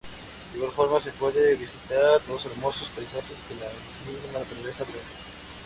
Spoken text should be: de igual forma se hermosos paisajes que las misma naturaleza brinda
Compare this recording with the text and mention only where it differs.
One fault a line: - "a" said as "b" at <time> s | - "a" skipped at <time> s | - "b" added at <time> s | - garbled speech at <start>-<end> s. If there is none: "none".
- "pueden visitar los" added at 1.1 s
- "las" said as "la" at 3.5 s